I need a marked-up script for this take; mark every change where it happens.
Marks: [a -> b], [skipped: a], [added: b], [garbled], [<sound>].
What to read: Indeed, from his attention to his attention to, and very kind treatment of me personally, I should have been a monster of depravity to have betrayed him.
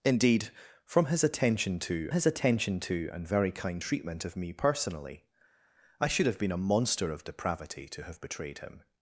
Indeed, from his attention to his attention to, and very kind treatment of me personally, I should have been a monster of depravity to have betrayed him.